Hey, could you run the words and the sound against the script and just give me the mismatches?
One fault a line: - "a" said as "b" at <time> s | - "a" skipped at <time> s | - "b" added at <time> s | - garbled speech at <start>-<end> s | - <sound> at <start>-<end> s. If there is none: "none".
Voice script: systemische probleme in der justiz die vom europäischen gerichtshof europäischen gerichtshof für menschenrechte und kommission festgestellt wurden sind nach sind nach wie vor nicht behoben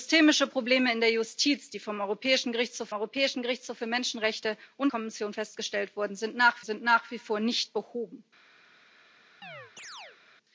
- chirp at 9.4-10.2 s